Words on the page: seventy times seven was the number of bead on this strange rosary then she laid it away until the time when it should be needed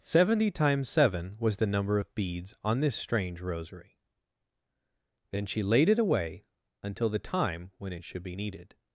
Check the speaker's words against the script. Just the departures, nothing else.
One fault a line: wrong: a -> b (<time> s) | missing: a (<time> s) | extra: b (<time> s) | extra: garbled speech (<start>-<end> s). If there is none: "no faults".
wrong: bead -> beads (2.1 s)